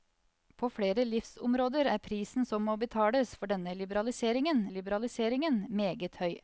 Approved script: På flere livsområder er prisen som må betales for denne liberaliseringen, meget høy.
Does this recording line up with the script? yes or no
no